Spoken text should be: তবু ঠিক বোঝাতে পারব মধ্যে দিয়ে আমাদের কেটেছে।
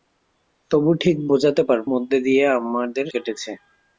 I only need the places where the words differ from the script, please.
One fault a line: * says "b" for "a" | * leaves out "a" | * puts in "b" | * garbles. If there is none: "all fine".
all fine